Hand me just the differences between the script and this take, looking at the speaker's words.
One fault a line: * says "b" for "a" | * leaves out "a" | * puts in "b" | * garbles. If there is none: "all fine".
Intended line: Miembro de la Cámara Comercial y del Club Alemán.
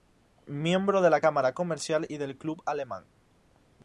all fine